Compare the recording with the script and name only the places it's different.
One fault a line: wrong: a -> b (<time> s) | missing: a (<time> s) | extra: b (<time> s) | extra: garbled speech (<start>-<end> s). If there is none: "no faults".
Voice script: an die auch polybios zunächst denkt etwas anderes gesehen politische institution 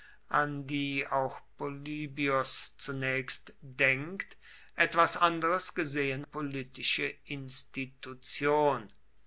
no faults